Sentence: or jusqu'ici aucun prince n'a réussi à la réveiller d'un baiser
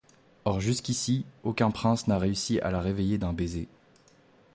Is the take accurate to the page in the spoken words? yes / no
yes